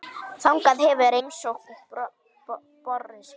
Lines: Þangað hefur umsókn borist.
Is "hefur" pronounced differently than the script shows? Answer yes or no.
no